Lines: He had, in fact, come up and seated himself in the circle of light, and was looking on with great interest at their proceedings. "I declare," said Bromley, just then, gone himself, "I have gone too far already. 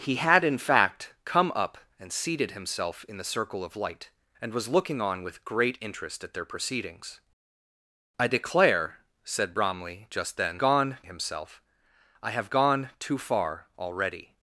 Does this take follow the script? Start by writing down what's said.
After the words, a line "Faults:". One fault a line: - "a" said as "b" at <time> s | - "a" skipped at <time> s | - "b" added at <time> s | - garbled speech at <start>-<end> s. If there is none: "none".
He had, in fact, come up and seated himself in the circle of light, and was looking on with great interest at their proceedings. "I declare," said Bromley, just then, gone himself, "I have gone too far already.
Faults:
none